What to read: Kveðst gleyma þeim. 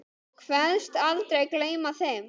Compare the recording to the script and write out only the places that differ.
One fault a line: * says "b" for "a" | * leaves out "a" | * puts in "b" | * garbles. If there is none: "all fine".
* puts in "aldrei"